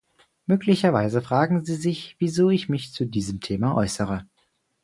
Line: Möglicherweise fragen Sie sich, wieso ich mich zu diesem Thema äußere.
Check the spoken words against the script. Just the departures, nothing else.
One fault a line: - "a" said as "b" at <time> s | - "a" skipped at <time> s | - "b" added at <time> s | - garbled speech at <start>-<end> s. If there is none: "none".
none